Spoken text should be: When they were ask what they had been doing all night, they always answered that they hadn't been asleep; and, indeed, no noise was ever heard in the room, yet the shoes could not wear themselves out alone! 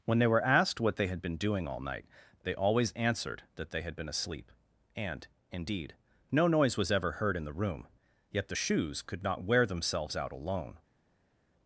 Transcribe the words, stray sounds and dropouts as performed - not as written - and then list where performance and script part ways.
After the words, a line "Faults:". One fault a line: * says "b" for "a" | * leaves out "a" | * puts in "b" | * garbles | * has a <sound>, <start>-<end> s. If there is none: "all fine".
When they were asked what they had been doing all night, they always answered that they had been asleep; and, indeed, no noise was ever heard in the room, yet the shoes could not wear themselves out alone!
Faults:
* says "asked" for "ask"
* says "had" for "hadn't"